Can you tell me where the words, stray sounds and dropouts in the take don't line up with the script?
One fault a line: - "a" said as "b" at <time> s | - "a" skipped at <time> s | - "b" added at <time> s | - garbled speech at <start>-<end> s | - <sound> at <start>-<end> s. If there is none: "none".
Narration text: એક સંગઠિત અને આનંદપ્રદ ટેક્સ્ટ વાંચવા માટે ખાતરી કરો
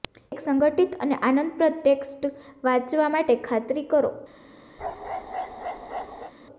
- bark at 4.8-6.3 s